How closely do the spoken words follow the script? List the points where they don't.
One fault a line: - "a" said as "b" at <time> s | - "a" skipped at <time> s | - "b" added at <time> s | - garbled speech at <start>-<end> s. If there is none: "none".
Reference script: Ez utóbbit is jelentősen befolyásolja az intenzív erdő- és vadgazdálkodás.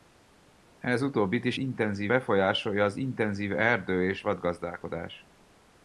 - "jelentősen" said as "intenzív" at 1.6 s